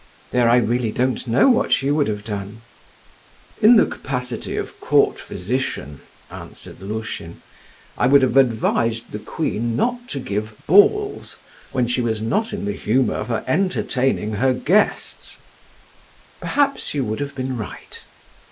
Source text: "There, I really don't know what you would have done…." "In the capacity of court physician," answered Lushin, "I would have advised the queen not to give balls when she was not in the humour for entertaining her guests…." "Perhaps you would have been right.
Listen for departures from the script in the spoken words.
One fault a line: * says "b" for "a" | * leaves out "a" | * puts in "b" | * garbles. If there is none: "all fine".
all fine